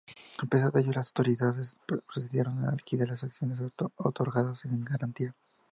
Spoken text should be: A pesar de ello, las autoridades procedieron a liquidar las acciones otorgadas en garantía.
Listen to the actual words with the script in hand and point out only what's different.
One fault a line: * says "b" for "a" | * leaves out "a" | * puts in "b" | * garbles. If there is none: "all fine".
all fine